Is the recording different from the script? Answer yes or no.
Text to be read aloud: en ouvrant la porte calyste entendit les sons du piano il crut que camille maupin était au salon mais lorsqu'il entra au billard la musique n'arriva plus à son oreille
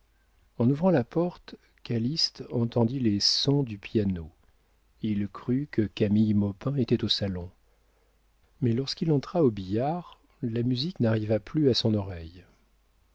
no